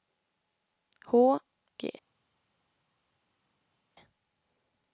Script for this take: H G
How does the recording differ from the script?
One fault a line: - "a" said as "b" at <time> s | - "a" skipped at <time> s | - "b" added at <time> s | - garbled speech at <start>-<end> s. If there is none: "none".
none